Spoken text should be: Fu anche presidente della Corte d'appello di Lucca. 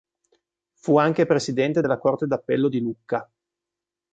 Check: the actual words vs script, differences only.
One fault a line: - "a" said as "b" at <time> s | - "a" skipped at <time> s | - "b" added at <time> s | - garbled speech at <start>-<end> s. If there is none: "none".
none